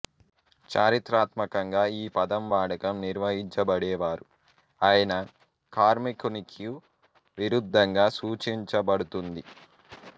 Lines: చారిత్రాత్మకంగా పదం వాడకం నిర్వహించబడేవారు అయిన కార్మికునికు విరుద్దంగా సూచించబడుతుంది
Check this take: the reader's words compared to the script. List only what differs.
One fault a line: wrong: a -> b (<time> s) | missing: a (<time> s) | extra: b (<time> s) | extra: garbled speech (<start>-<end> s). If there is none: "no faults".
extra: ఈ (2.0 s)